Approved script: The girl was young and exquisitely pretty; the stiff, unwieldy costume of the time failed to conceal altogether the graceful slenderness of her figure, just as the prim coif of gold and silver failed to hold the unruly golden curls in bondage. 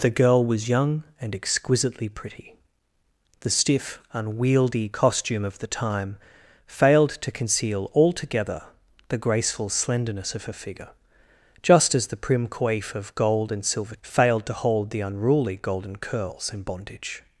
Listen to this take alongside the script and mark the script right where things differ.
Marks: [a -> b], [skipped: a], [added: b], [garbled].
The girl was young and exquisitely pretty; the stiff, unwieldy costume of the time failed to conceal altogether the graceful slenderness of her figure, just as the prim coif of gold and silver failed to hold the unruly golden curls in bondage.